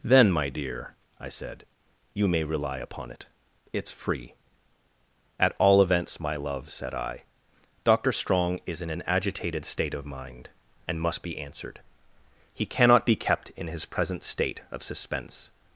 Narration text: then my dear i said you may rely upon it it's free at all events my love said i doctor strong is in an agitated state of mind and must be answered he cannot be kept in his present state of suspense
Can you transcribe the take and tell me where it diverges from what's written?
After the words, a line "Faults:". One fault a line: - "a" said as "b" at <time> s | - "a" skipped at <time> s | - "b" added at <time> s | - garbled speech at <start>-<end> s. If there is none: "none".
then my dear i said you may rely upon it it's free at all events my love said i doctor strong is in an agitated state of mind and must be answered he cannot be kept in his present state of suspense
Faults:
none